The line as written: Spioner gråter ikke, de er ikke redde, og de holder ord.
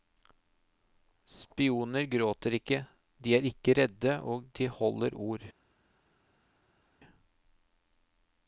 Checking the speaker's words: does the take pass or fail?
pass